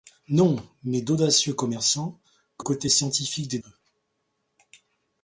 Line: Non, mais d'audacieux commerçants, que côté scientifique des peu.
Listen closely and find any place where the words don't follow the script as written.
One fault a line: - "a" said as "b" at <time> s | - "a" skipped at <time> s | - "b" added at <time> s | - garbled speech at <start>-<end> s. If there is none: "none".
none